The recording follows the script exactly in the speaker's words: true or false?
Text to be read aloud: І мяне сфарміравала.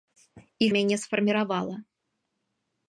true